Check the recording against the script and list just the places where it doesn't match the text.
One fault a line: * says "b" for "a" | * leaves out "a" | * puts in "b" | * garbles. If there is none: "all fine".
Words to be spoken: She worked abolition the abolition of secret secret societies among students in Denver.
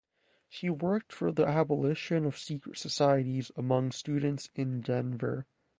* says "for" for "abolition"
* leaves out "secret"